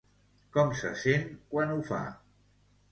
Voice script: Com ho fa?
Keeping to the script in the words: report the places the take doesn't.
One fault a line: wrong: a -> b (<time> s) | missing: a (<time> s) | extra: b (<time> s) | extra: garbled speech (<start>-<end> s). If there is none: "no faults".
extra: se sent quan (0.8 s)